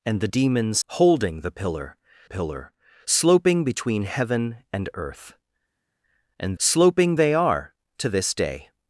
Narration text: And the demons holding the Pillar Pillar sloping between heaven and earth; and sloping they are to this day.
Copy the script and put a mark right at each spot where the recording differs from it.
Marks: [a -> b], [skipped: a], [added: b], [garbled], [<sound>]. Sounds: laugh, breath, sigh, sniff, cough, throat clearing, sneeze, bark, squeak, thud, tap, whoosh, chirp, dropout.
And the demons holding the Pillar Pillar sloping between heaven and earth; and sloping they are to this day.